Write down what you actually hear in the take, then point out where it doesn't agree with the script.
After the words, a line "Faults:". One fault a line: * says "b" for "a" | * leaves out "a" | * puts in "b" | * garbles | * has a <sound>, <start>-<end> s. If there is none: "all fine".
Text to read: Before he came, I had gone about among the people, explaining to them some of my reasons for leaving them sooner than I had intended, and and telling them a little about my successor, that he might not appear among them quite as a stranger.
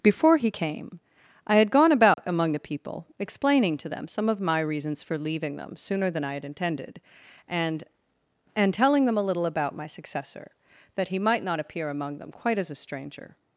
Before he came, I had gone about among the people, explaining to them some of my reasons for leaving them sooner than I had intended, and and telling them a little about my successor, that he might not appear among them quite as a stranger.
Faults:
* has a dropout, 2.1-2.2 s